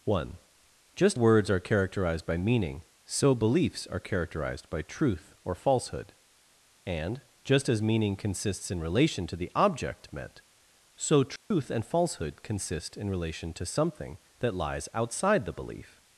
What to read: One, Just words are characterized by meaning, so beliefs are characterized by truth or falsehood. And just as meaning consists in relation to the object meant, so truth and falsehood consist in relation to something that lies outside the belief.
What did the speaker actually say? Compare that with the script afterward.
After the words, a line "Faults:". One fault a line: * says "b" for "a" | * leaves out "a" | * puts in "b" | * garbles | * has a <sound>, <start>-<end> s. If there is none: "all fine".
One, Just words are characterized by meaning, so beliefs are characterized by truth or falsehood. And just as meaning consists in relation to the object meant, so truth and falsehood consist in relation to something that lies outside the belief.
Faults:
* has a dropout, 11.4-11.5 s